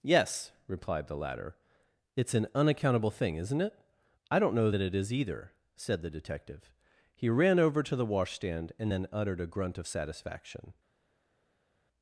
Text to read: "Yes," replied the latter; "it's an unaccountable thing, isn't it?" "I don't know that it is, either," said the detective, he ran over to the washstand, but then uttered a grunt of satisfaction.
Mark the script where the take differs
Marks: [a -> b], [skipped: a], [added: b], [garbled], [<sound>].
"Yes," replied the latter; "it's an unaccountable thing, isn't it?" "I don't know that it is, either," said the detective, he ran over to the washstand, [but -> and] then uttered a grunt of satisfaction.